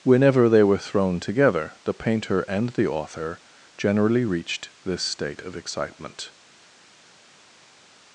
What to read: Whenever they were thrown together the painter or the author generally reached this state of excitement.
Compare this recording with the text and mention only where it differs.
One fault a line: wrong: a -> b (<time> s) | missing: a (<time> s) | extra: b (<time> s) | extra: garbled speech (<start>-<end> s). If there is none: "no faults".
wrong: or -> and (2.4 s)